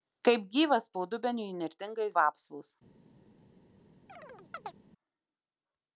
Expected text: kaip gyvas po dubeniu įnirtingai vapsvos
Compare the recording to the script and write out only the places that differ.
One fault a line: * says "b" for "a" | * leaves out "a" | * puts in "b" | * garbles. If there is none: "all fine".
all fine